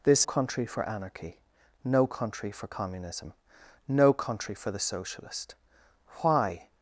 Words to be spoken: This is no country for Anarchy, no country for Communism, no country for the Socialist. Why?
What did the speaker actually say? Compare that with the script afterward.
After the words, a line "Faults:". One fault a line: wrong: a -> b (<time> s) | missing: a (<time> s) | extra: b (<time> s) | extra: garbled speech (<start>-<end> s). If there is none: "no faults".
This country for Anarchy, no country for Communism, no country for the Socialist. Why?
Faults:
missing: is no (0.2 s)